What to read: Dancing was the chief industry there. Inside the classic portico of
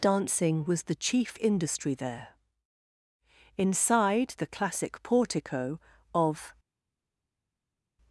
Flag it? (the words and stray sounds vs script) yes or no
no